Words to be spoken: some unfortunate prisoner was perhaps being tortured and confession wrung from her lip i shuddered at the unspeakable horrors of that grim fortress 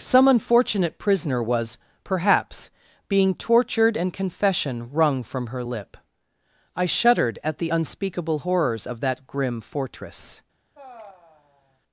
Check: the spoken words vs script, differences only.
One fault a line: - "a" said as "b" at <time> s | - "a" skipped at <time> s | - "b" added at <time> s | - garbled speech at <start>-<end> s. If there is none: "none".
none